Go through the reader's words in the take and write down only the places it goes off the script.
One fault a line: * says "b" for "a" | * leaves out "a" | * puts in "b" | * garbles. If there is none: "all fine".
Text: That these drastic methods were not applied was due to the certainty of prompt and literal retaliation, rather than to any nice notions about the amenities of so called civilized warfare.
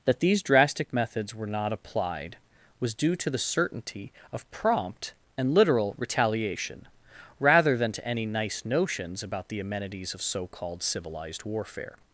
all fine